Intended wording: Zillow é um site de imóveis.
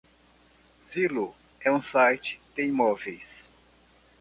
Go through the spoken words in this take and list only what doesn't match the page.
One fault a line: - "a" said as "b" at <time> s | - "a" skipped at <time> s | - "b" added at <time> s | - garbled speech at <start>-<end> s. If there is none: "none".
none